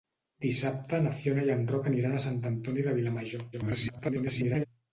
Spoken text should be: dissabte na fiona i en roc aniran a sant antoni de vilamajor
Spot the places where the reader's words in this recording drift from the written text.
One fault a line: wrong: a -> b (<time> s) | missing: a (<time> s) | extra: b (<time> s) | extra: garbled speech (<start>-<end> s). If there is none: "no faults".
extra: garbled speech (3.5-4.7 s)